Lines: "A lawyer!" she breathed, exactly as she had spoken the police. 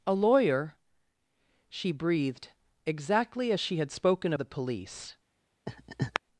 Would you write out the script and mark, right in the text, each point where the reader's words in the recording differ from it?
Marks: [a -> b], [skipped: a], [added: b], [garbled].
"A lawyer!" she breathed, exactly as she had spoken the police.